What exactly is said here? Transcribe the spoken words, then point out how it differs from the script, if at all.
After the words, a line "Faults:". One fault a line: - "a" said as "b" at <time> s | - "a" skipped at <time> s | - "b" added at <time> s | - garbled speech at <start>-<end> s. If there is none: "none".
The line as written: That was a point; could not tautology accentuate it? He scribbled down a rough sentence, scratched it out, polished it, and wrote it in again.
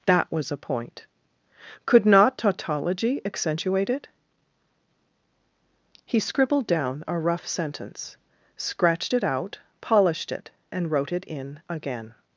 That was a point; could not tautology accentuate it? He scribbled down a rough sentence, scratched it out, polished it, and wrote it in again.
Faults:
none